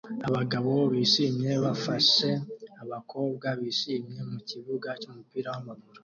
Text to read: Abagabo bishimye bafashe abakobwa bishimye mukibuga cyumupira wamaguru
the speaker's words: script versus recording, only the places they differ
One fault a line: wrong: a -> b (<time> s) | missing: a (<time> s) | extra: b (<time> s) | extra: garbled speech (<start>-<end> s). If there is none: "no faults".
no faults